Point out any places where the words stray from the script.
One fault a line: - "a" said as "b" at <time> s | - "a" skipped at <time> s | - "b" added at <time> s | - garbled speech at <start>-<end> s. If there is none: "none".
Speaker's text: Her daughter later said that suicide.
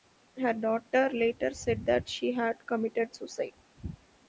- "she had committed" added at 2.1 s